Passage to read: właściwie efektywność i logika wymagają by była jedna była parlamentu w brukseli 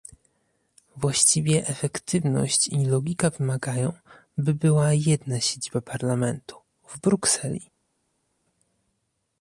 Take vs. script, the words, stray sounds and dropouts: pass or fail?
fail